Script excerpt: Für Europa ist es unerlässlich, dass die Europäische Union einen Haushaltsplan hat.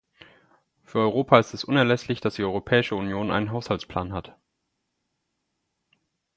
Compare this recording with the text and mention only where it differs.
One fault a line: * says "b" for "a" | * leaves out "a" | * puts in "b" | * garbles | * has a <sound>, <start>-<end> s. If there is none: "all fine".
all fine